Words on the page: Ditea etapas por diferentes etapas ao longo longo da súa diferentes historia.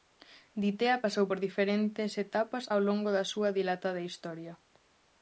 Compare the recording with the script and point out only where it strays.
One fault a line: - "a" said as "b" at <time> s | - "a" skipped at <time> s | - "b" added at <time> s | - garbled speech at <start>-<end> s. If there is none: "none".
- "etapas" said as "pasou" at 1.0 s
- "longo" skipped at 3.1 s
- "diferentes" said as "dilatada" at 3.6 s